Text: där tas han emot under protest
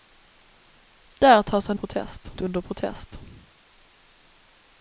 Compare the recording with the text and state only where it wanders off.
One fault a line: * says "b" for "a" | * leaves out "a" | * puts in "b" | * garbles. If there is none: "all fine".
* says "protest" for "emot"